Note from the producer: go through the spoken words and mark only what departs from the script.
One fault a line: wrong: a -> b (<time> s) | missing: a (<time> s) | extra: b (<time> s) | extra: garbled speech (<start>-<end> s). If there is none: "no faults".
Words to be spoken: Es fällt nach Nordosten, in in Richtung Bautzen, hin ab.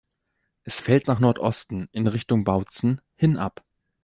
missing: in (2.1 s)